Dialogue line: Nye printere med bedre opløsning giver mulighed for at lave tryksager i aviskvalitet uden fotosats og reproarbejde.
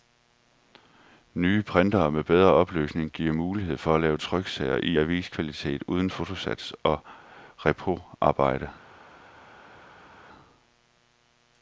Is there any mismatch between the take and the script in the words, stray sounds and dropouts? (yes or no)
no